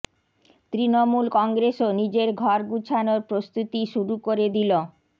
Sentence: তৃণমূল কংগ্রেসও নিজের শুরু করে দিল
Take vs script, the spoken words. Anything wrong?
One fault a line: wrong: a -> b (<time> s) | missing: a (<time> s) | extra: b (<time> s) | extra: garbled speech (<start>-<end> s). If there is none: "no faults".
extra: ঘর গুছানোর প্রস্তুতি (2.4 s)